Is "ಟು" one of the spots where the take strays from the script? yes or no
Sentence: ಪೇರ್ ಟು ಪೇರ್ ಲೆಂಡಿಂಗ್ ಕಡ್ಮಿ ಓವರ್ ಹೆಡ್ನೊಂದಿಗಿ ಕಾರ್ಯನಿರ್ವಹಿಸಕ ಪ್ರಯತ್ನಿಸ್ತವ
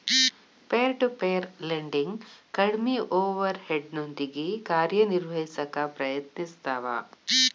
no